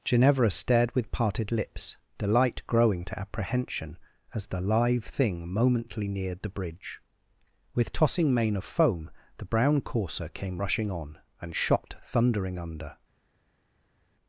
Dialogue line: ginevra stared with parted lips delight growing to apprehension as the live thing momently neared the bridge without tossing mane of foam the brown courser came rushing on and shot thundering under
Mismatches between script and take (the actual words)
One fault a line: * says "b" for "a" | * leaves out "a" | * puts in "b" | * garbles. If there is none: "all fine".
* says "with" for "without"